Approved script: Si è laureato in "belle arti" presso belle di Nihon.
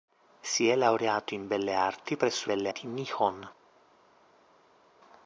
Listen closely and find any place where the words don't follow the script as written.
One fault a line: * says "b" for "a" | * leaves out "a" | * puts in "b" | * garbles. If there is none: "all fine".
all fine